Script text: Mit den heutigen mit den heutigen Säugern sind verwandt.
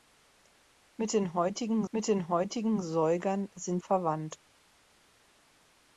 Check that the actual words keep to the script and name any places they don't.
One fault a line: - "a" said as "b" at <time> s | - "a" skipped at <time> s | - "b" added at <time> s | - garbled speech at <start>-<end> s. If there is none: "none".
none